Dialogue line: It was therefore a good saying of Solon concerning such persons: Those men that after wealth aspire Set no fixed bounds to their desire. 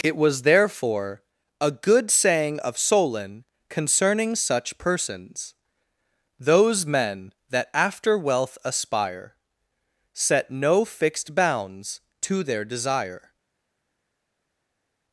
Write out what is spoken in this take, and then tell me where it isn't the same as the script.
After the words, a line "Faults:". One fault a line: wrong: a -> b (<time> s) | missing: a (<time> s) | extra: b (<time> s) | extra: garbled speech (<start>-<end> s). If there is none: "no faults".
It was therefore a good saying of Solon concerning such persons: Those men that after wealth aspire Set no fixed bounds to their desire.
Faults:
no faults